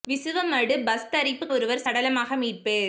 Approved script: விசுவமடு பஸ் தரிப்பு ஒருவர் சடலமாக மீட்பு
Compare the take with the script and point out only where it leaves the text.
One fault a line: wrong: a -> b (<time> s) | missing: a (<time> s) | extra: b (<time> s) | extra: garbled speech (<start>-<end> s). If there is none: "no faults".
no faults